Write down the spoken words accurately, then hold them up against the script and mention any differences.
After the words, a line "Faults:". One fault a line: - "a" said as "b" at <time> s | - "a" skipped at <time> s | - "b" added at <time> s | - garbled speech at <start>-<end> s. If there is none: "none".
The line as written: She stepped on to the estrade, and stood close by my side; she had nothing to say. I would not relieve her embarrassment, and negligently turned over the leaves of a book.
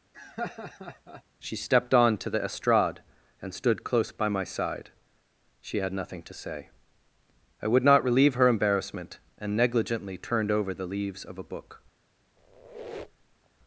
She stepped on to the estrade, and stood close by my side; she had nothing to say. I would not relieve her embarrassment, and negligently turned over the leaves of a book.
Faults:
none